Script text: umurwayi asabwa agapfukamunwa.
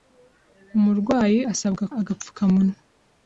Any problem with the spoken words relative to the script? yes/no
no